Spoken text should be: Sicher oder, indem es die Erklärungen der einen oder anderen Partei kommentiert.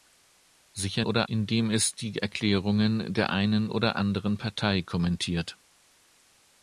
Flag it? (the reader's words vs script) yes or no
no